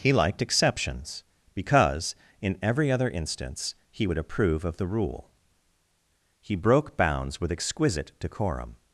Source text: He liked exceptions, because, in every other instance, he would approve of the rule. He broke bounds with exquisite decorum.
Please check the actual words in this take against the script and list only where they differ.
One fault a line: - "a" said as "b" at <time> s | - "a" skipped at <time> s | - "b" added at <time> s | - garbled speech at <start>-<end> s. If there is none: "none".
none